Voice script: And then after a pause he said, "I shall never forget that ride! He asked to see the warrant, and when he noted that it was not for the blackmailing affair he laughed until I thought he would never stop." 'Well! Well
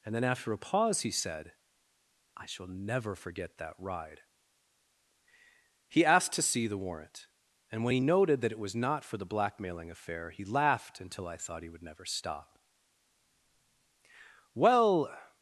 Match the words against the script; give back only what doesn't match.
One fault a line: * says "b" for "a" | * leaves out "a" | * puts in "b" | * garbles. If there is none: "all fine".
* leaves out "Well"